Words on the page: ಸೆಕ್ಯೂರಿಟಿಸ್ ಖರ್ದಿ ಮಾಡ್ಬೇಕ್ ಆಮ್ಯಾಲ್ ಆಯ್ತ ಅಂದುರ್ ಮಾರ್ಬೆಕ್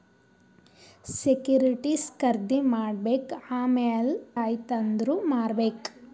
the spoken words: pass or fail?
pass